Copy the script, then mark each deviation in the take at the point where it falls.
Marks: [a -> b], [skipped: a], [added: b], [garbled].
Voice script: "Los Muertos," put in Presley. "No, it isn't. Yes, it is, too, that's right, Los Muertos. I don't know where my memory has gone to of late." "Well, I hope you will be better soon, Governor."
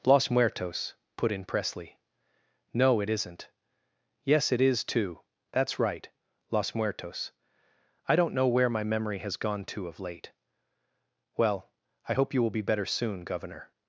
"Los Muertos," put in Presley. "No, it isn't. Yes, it is, too, that's right, Los Muertos. I don't know where my memory has gone to of late." "Well, I hope you will be better soon, Governor."